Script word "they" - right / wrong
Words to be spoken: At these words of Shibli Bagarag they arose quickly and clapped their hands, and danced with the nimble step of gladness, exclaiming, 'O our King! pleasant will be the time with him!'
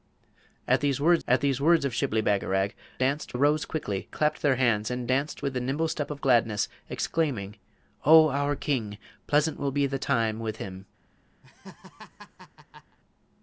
wrong